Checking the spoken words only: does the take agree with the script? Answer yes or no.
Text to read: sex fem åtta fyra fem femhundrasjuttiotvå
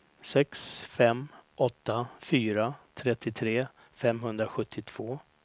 no